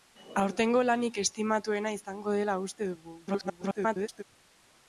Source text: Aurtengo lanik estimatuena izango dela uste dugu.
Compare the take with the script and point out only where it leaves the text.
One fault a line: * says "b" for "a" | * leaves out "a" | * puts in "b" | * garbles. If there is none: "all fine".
* garbles